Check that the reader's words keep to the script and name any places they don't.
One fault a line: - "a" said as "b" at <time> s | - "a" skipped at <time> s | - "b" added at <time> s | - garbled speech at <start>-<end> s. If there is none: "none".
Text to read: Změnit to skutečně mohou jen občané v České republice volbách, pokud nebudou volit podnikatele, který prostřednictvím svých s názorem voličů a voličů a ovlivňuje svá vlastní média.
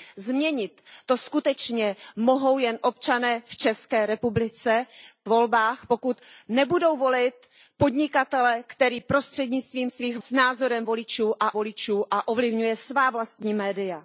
none